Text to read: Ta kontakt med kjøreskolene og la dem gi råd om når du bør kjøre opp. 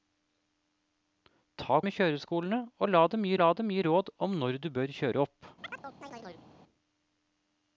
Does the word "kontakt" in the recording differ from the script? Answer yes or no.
yes